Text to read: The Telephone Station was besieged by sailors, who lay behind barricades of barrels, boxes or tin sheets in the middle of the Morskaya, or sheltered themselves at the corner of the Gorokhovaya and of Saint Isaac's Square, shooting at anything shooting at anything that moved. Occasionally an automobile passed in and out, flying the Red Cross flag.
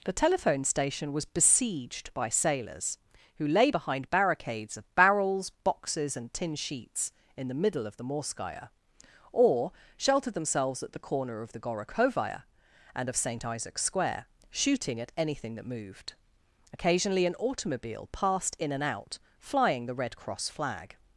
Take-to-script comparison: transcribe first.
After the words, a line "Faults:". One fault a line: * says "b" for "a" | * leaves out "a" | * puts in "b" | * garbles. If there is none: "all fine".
The Telephone Station was besieged by sailors, who lay behind barricades of barrels, boxes and tin sheets in the middle of the Morskaya, or sheltered themselves at the corner of the Gorokhovaya and of Saint Isaac's Square, shooting at anything that moved. Occasionally an automobile passed in and out, flying the Red Cross flag.
Faults:
* says "and" for "or"
* leaves out "shooting at anything"